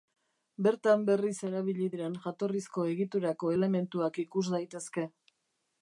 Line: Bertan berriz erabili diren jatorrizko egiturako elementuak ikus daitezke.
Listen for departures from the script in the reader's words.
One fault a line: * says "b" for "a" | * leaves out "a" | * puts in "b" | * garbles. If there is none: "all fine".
all fine